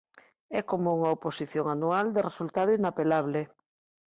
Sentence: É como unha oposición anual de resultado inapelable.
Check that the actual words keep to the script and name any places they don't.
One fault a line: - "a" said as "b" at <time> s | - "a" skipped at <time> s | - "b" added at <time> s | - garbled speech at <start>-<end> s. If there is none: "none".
none